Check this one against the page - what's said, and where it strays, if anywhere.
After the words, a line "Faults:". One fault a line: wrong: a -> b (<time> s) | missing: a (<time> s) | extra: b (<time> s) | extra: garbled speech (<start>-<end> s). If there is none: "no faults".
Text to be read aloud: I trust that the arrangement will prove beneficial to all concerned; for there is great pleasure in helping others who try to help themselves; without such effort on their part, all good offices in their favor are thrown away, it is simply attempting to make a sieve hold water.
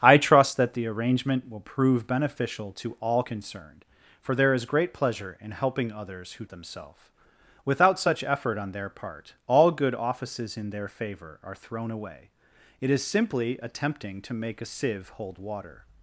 I trust that the arrangement will prove beneficial to all concerned; for there is great pleasure in helping others who themselves; without such effort on their part, all good offices in their favor are thrown away, it is simply attempting to make a sieve hold water.
Faults:
missing: try to help (6.4 s)